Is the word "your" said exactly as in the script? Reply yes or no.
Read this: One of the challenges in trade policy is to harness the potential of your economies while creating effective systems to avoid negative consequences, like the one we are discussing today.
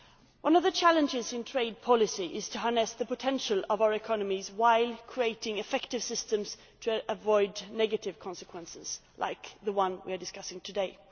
no